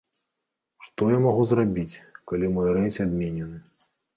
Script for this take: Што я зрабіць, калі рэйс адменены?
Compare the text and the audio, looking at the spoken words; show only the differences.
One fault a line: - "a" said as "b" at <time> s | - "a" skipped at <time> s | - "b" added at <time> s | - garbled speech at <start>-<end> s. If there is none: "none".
- "магу" added at 1.3 s
- "мой" added at 2.6 s